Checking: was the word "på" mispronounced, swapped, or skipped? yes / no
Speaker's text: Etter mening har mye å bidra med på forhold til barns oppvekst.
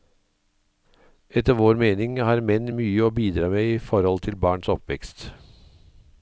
yes